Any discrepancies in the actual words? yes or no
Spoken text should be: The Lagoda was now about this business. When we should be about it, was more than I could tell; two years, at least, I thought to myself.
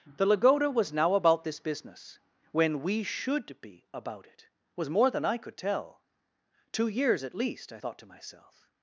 no